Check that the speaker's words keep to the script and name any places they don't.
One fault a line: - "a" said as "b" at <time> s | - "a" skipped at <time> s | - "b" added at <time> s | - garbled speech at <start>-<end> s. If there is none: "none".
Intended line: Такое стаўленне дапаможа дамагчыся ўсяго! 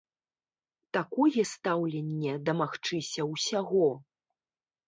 - "дапаможа" skipped at 2.3 s